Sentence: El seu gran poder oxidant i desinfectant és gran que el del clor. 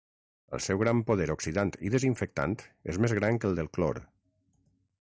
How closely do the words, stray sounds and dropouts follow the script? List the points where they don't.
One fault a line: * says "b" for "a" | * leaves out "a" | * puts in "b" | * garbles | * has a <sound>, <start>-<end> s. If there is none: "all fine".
* puts in "més"